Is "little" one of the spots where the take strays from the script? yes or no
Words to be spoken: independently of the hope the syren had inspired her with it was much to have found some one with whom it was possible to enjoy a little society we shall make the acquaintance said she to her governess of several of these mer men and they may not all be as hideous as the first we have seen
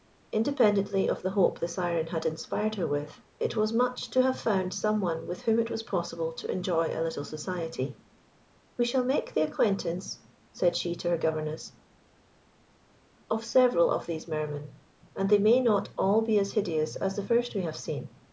no